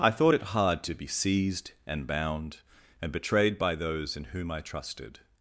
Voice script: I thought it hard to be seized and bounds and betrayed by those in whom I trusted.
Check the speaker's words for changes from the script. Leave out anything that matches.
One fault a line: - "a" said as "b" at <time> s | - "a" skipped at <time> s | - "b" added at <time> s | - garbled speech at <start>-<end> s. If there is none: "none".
- "bounds" said as "bound" at 2.1 s